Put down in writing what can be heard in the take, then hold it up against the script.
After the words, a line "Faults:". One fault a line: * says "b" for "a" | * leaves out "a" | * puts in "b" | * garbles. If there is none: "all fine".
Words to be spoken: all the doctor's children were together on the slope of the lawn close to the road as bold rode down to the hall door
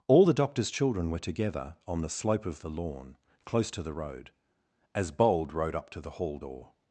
all the doctor's children were together on the slope of the lawn close to the road as bold rode up to the hall door
Faults:
* says "up" for "down"